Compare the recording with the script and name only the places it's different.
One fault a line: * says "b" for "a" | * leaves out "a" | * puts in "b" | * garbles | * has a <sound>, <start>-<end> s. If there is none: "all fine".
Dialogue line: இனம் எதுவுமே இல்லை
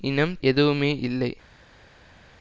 all fine